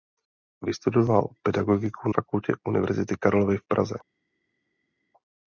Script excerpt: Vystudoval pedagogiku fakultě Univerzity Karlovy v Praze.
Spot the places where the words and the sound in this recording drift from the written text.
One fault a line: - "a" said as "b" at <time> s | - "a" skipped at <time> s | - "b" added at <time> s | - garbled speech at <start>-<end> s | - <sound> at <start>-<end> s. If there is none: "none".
none